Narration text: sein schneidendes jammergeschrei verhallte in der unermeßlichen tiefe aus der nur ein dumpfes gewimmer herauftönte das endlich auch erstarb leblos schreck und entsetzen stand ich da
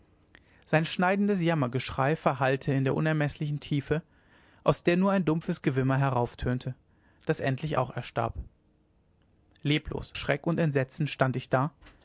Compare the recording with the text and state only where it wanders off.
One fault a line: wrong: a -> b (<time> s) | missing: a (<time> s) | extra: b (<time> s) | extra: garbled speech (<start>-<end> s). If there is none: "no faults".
no faults